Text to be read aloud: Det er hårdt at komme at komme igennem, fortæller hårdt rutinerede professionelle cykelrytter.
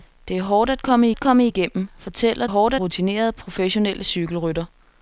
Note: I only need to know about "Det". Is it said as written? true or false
true